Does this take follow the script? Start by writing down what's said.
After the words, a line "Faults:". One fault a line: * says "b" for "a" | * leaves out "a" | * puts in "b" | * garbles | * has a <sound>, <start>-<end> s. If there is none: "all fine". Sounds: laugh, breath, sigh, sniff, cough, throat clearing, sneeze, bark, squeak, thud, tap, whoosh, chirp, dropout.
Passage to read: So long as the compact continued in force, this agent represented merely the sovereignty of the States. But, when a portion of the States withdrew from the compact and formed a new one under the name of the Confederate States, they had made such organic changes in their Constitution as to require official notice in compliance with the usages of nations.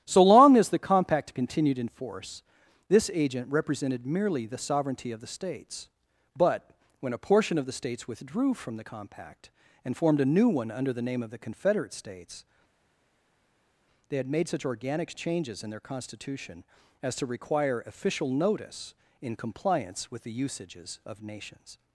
So long as the compact continued in force, this agent represented merely the sovereignty of the States. But, when a portion of the States withdrew from the compact and formed a new one under the name of the Confederate States, they had made such organic changes in their Constitution as to require official notice in compliance with the usages of nations.
Faults:
all fine